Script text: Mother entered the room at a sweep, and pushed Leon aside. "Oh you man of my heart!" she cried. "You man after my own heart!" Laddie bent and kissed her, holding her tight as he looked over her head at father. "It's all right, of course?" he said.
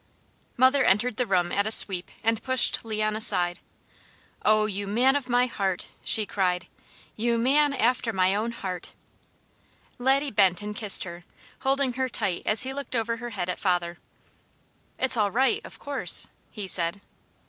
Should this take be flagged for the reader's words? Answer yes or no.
no